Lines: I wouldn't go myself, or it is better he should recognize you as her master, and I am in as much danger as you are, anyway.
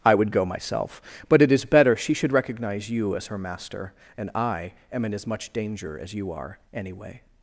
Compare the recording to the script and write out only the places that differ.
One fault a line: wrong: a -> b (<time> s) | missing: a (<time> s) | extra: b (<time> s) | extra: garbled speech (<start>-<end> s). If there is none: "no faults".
wrong: wouldn't -> would (0.1 s)
wrong: or -> but (1.3 s)
wrong: he -> she (1.9 s)